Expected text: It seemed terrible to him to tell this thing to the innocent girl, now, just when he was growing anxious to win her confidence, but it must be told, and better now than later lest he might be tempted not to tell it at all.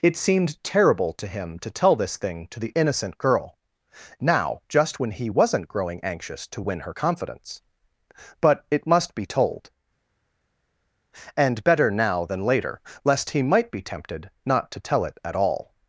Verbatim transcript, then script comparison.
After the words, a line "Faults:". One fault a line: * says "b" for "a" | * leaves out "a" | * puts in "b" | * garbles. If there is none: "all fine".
It seemed terrible to him to tell this thing to the innocent girl, now, just when he wasn't growing anxious to win her confidence, but it must be told, and better now than later lest he might be tempted not to tell it at all.
Faults:
* says "wasn't" for "was"